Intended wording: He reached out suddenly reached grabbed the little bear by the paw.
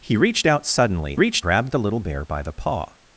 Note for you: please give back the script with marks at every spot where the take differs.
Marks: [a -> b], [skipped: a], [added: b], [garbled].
He reached out suddenly reached grabbed the little bear by the paw.